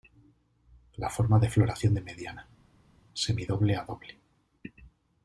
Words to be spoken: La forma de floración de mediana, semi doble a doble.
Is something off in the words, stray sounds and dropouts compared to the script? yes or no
no